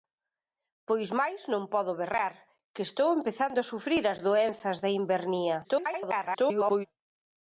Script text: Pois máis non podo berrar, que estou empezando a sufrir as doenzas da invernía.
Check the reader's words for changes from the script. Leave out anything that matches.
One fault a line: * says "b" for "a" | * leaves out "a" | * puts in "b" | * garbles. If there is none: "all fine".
* garbles